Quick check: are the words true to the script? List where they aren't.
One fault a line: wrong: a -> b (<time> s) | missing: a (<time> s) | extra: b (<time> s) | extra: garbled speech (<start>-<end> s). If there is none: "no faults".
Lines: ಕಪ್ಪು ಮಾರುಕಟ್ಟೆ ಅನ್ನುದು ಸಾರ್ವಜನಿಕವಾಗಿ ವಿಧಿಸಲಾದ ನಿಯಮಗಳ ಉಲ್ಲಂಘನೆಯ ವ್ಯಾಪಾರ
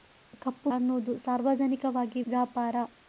missing: ಮಾರುಕಟ್ಟೆ (0.7 s)
missing: ವಿಧಿಸಲಾದ ನಿಯಮಗಳ ಉಲ್ಲಂಘನೆಯ (2.2 s)